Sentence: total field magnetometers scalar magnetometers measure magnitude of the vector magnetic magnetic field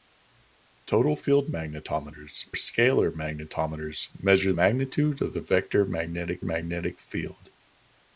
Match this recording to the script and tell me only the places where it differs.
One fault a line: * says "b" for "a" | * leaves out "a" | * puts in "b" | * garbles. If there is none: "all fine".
all fine